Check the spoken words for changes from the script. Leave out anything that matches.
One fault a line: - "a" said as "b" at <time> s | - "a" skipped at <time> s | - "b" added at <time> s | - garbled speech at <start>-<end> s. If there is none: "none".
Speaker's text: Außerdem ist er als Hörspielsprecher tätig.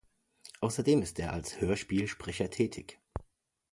none